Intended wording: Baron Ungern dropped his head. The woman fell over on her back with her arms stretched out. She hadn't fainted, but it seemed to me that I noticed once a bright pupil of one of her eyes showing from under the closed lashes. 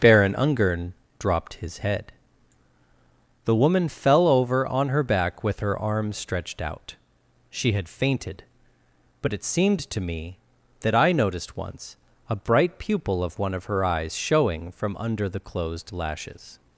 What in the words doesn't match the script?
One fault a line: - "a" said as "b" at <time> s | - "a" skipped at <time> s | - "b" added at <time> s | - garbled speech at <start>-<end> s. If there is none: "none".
- "hadn't" said as "had" at 7.7 s